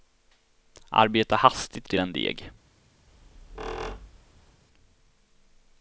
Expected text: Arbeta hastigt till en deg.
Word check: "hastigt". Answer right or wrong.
right